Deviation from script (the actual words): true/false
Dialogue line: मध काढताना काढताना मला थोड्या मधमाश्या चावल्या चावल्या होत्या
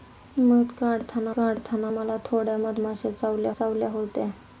false